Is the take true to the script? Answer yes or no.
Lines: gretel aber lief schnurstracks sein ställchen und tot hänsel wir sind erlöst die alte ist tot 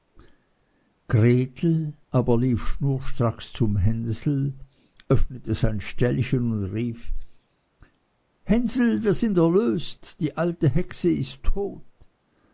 no